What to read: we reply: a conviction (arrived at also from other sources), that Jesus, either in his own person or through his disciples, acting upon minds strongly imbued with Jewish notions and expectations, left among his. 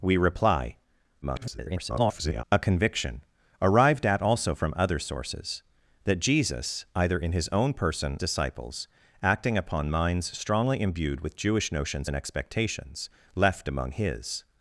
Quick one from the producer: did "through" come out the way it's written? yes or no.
no